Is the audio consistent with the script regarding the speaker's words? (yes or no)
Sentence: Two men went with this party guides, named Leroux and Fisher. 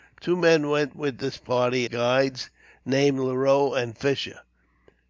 yes